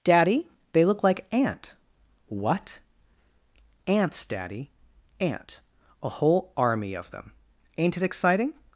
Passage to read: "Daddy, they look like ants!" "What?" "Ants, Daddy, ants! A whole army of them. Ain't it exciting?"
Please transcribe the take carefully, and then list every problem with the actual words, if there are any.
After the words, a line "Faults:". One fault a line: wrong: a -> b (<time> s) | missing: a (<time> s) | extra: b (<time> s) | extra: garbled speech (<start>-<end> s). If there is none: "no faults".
"Daddy, they look like ant!" "What?" "Ants, Daddy, ant! A whole army of them. Ain't it exciting?"
Faults:
wrong: ants -> ant (1.3 s)
wrong: ants -> ant (5.2 s)